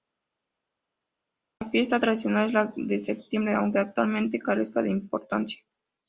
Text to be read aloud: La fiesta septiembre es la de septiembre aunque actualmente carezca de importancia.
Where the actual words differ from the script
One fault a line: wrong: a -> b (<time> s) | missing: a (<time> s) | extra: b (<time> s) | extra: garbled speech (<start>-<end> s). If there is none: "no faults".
wrong: septiembre -> tradicional (2.0 s)